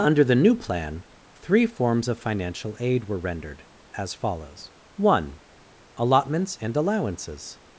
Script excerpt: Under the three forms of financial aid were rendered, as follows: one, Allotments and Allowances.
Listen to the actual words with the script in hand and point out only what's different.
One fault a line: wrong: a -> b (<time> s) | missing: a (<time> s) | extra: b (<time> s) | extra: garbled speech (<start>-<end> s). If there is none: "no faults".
extra: new plan (0.3 s)